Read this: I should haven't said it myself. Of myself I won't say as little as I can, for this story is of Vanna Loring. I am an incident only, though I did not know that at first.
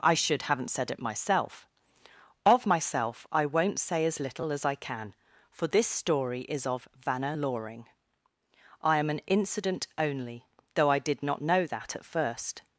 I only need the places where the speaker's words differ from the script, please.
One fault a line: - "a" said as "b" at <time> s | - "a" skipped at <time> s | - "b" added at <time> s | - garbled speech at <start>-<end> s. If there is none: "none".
none